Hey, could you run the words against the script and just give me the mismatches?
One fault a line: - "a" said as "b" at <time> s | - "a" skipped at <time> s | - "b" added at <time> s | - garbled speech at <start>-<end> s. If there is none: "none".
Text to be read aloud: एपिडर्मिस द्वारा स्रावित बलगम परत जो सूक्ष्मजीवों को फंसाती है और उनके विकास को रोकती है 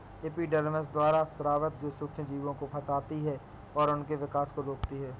- "बलगम परत" skipped at 1.8 s